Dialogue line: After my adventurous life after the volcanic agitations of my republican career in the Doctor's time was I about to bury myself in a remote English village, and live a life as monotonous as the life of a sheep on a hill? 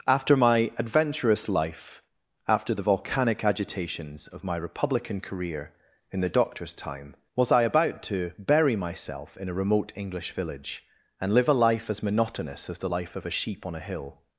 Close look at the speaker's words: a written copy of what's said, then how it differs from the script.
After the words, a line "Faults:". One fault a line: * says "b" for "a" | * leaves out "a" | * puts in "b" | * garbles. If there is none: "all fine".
After my adventurous life after the volcanic agitations of my republican career in the Doctor's time was I about to bury myself in a remote English village, and live a life as monotonous as the life of a sheep on a hill?
Faults:
all fine